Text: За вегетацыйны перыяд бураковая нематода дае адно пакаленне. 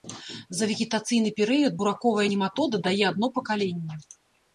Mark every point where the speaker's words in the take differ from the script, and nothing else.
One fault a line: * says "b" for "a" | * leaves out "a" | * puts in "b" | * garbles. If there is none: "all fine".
all fine